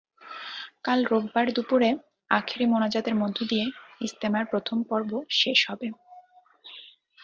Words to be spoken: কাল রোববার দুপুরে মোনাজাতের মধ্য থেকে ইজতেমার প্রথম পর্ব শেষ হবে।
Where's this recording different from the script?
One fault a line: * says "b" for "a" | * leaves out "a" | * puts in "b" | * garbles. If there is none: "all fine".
* puts in "আখেরি"
* says "দিয়ে" for "থেকে"